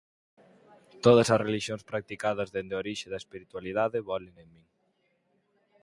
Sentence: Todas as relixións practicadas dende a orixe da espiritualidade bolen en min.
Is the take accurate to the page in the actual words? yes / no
yes